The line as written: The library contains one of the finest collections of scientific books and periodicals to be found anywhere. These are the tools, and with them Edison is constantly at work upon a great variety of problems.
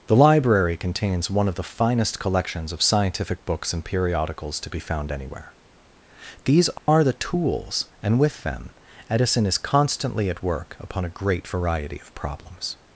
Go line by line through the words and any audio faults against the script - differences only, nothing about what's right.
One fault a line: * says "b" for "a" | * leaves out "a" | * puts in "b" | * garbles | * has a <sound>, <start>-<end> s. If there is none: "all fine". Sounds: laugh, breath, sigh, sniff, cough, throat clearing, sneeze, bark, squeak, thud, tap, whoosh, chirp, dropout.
* has a dropout, 6.8-6.9 s